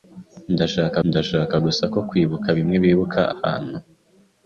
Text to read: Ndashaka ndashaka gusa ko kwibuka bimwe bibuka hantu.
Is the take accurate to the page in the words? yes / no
yes